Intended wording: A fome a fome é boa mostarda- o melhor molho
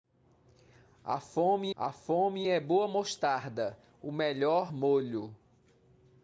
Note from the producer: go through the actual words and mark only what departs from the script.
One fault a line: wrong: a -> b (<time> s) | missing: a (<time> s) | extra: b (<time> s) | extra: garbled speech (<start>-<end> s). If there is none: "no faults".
no faults